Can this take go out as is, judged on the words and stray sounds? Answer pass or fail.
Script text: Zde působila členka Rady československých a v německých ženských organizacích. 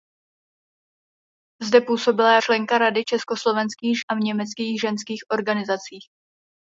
pass